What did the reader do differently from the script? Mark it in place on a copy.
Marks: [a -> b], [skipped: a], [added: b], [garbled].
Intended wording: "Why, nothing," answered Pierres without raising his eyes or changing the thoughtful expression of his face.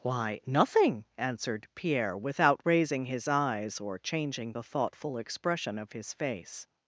"Why, nothing," answered [Pierres -> Pierre] without raising his eyes or changing the thoughtful expression of his face.